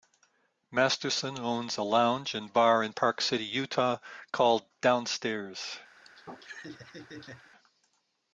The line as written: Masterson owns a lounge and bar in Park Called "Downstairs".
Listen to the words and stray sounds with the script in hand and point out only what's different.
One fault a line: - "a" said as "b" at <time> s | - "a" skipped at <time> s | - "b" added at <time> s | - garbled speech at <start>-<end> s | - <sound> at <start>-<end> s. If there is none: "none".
- "City Utah" added at 3.2 s
- laugh at 6.0-7.5 s